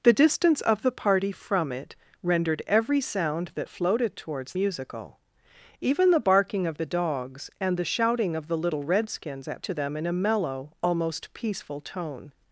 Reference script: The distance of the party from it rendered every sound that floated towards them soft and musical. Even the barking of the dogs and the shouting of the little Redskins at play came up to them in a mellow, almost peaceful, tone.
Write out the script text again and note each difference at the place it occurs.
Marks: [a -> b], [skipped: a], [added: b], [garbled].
The distance of the party from it rendered every sound that floated towards [skipped: them soft and] musical. Even the barking of the dogs and the shouting of the little Redskins at [skipped: play came up] to them in a mellow, almost peaceful, tone.